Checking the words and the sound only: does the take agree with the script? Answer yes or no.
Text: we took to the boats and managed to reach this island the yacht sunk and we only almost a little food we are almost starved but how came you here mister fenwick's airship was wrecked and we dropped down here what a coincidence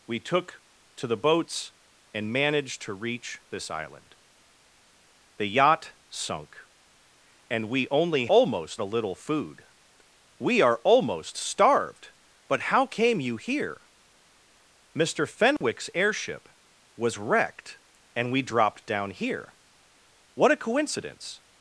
no